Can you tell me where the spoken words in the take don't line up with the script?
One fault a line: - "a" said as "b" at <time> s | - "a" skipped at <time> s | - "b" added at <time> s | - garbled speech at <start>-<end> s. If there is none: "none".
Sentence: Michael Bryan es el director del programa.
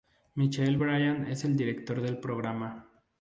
none